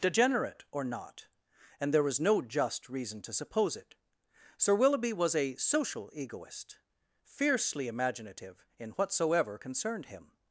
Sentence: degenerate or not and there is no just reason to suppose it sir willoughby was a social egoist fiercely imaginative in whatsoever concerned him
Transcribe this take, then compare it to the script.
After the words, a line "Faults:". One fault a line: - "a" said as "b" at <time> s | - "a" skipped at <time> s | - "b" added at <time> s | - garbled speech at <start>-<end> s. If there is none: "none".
degenerate or not and there was no just reason to suppose it sir willoughby was a social egoist fiercely imaginative in whatsoever concerned him
Faults:
- "is" said as "was" at 2.0 s